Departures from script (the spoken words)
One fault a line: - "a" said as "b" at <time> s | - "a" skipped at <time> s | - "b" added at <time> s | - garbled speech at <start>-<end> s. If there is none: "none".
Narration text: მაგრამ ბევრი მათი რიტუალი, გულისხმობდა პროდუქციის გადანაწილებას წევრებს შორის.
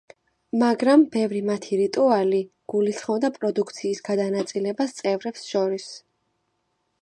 none